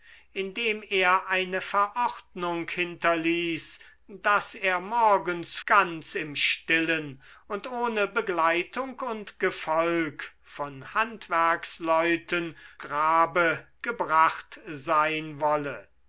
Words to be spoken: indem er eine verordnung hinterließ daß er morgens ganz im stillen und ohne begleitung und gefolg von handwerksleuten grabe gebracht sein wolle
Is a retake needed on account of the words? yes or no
no